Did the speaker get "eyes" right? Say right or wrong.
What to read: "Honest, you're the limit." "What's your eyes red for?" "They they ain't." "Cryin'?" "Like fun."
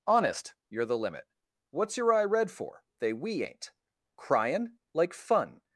wrong